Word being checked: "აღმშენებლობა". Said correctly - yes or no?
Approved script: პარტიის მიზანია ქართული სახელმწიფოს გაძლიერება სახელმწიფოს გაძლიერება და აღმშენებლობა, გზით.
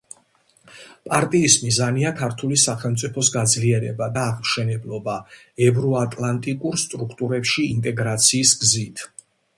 no